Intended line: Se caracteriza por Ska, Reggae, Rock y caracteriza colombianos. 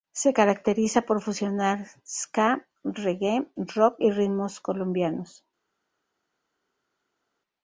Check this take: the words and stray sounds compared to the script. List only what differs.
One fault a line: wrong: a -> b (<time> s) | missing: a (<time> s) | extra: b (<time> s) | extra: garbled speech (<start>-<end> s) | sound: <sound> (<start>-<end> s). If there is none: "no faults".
extra: fusionar (1.2 s)
wrong: caracteriza -> ritmos (4.1 s)